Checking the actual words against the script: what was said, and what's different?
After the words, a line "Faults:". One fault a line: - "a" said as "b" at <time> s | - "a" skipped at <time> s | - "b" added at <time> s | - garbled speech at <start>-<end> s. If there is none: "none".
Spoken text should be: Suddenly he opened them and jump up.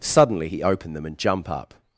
Suddenly he opened them and jump up.
Faults:
none